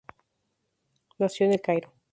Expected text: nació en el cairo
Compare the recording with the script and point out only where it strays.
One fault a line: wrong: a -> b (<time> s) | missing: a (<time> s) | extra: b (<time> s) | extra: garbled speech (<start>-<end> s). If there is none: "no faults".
no faults